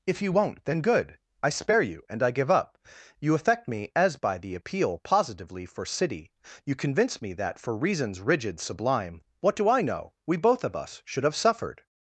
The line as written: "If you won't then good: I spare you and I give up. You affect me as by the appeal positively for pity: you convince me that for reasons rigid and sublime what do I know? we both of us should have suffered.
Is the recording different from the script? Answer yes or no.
yes